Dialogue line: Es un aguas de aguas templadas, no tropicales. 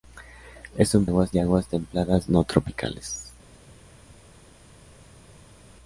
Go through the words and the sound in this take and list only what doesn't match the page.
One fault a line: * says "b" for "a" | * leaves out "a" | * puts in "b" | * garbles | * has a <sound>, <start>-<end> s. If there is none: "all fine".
all fine